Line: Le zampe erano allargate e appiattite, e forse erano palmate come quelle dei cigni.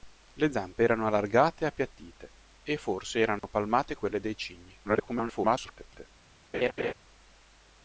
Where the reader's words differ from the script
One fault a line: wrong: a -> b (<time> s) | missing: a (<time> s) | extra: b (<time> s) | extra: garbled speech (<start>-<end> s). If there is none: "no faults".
missing: come (3.9 s)
extra: garbled speech (4.8-6.1 s)